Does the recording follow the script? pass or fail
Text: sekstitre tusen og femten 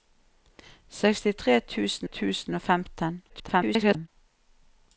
fail